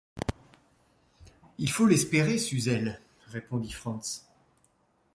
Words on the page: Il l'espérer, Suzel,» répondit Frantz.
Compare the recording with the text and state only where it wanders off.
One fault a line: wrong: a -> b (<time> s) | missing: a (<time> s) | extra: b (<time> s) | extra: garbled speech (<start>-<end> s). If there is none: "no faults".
extra: faut (1.7 s)